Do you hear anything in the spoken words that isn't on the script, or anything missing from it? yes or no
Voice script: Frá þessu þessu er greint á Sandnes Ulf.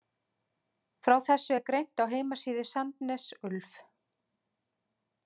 yes